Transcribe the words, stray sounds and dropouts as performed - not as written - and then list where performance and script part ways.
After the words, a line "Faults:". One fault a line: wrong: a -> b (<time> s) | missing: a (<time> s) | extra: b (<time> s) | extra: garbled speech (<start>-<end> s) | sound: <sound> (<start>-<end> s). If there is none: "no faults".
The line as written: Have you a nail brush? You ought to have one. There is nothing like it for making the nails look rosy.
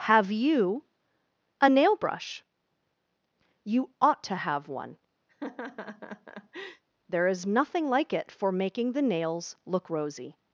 Have you a nail brush? You ought to have one. There is nothing like it for making the nails look rosy.
Faults:
sound: laugh (5.3-6.8 s)